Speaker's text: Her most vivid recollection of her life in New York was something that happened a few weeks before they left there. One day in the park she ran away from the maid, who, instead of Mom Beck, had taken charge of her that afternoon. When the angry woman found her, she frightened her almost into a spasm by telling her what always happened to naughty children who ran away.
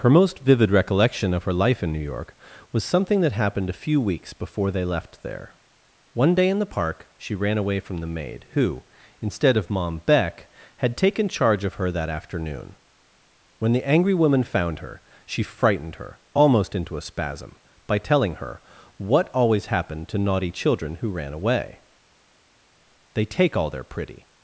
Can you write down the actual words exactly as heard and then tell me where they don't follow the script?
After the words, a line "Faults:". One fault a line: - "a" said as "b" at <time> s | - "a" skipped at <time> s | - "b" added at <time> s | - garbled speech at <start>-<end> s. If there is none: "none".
Her most vivid recollection of her life in New York was something that happened a few weeks before they left there. One day in the park she ran away from the maid, who, instead of Mom Beck, had taken charge of her that afternoon. When the angry woman found her, she frightened her almost into a spasm by telling her what always happened to naughty children who ran away. "They take all their pretty
Faults:
- "They take all their pretty" added at 23.1 s